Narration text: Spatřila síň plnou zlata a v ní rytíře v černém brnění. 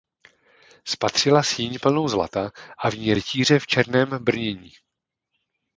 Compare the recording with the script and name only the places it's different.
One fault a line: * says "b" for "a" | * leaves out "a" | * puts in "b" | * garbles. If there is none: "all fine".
all fine